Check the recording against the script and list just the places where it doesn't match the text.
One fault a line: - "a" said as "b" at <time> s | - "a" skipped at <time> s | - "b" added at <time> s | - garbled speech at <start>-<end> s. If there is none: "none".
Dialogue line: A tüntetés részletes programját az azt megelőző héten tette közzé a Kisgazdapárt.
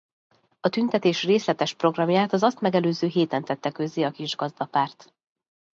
none